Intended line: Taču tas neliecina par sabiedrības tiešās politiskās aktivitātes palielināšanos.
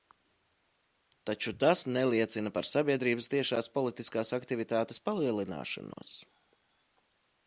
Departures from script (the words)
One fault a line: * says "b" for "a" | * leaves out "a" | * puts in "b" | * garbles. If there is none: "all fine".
all fine